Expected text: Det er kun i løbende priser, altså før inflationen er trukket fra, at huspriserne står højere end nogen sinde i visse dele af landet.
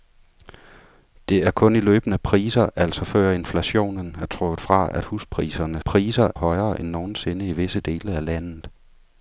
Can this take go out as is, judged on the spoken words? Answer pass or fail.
fail